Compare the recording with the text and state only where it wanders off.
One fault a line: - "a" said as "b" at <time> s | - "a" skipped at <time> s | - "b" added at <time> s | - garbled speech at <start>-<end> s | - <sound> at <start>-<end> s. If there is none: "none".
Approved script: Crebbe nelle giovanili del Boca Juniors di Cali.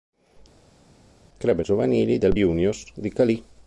- "nelle" skipped at 1.6 s
- "Boca" skipped at 2.4 s